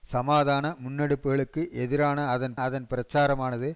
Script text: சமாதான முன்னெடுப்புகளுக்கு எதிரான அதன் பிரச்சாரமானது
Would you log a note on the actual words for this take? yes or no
yes